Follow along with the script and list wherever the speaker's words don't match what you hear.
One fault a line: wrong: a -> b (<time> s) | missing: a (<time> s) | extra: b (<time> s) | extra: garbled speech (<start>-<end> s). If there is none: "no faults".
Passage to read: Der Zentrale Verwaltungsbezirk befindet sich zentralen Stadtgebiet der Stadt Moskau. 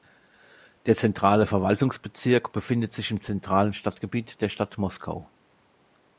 extra: im (3.1 s)